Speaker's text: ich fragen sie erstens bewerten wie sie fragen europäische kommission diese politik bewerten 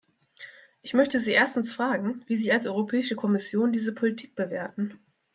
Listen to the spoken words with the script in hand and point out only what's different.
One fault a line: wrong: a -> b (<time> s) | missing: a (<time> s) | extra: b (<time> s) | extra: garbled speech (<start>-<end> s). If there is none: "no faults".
wrong: fragen -> möchte (0.9 s)
wrong: bewerten -> fragen (1.8 s)
wrong: fragen -> als (2.5 s)